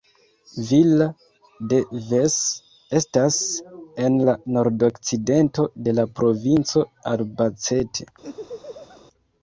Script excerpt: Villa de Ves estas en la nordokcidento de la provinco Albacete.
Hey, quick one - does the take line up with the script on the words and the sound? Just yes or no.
no